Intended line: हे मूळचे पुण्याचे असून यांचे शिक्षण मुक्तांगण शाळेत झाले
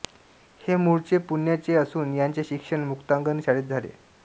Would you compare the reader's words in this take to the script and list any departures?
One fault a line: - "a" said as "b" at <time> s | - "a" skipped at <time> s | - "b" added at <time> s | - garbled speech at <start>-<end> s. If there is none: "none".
none